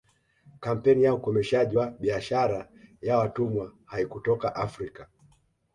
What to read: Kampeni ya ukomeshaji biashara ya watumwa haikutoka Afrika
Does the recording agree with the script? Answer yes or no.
no